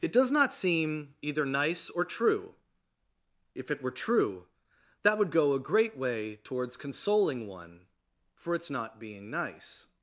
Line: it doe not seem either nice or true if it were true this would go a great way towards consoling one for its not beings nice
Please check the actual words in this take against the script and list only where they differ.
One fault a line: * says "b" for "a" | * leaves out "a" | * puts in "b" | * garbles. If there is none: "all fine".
* says "does" for "doe"
* says "that" for "this"
* says "being" for "beings"